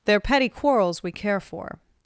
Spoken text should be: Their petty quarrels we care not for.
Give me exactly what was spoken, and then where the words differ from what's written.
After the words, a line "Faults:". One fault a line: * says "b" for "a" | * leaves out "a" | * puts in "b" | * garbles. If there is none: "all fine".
Their petty quarrels we care for.
Faults:
* leaves out "not"